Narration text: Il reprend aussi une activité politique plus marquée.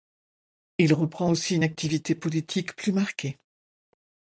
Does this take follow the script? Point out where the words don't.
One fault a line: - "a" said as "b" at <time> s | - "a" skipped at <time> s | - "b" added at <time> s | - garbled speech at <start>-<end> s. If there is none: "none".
none